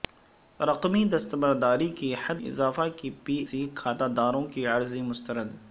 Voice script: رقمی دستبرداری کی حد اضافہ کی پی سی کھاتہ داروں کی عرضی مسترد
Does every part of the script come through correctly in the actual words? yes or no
yes